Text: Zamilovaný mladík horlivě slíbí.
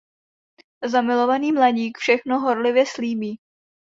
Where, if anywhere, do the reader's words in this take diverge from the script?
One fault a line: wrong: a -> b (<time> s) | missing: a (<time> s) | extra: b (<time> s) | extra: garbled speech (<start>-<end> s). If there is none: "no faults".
extra: všechno (2.0 s)